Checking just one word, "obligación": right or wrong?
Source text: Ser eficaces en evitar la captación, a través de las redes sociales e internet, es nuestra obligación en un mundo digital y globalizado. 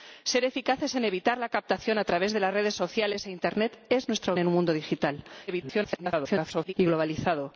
wrong